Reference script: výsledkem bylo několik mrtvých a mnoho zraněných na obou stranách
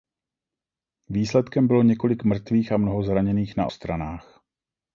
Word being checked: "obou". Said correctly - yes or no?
no